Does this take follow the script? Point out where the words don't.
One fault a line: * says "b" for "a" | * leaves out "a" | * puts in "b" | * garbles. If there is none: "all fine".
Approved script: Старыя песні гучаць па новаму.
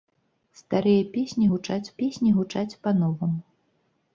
* puts in "песні гучаць"